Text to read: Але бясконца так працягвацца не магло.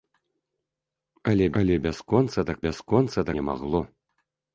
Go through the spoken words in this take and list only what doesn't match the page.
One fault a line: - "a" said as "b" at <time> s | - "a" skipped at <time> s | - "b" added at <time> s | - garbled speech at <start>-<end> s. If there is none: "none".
- "але" added at 1.6 s
- "працягвацца" said as "бясконца" at 2.7 s